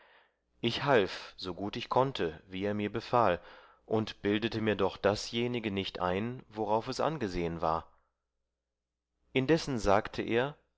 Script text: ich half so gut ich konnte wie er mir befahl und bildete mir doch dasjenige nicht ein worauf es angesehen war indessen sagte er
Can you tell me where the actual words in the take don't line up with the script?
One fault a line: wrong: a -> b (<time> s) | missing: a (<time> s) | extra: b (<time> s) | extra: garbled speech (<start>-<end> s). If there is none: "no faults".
no faults